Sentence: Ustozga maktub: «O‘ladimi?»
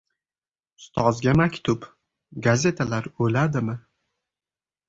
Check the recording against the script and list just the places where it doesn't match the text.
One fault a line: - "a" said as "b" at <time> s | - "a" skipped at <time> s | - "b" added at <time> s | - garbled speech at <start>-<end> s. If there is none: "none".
- "Gazetalar" added at 2.5 s